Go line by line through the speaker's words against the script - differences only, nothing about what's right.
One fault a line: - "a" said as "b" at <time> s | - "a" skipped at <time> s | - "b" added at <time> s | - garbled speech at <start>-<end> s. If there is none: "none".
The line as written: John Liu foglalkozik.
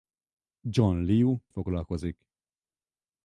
none